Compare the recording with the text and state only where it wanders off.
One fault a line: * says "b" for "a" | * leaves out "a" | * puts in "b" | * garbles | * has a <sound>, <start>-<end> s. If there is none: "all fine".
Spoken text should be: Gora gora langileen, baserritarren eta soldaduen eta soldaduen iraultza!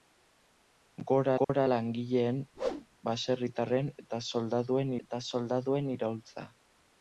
* has a dropout, 1.4-1.5 s
* has a whoosh, 2.6-2.9 s